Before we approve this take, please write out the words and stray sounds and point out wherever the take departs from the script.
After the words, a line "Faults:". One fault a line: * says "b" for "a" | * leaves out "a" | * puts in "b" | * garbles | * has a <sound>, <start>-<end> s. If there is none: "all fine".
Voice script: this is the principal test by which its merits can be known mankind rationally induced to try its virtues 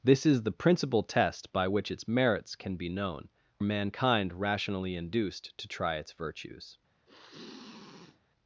this is the principal test by which its merits can be known mankind rationally induced to try its virtues
Faults:
* has a sniff, 7.1-8.2 s